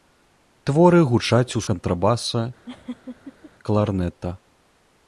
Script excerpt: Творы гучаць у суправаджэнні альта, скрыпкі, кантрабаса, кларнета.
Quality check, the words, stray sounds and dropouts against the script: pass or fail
fail